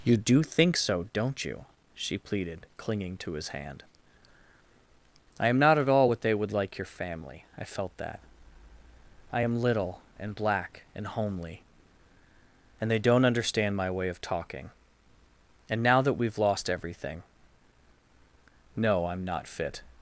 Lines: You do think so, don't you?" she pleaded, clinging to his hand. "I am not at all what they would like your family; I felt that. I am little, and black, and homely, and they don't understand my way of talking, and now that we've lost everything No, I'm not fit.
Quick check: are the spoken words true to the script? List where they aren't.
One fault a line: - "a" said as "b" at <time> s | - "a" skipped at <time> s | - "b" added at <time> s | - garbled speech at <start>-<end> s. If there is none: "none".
none